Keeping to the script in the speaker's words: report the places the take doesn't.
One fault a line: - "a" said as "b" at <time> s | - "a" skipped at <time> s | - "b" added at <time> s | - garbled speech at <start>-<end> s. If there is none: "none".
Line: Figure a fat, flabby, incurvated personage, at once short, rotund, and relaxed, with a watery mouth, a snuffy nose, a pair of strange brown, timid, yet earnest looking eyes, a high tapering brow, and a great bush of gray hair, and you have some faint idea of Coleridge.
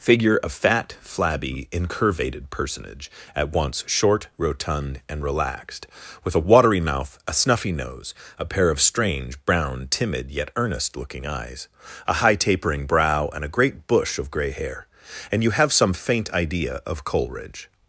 none